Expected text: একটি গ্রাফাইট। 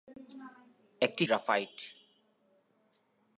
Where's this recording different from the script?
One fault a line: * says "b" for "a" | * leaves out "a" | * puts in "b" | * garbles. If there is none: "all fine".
all fine